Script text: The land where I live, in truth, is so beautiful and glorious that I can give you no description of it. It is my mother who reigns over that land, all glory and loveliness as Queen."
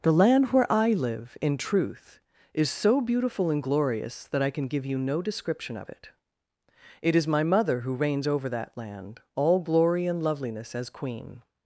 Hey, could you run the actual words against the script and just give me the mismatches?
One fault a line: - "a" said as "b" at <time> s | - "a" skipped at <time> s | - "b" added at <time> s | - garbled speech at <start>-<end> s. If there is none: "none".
none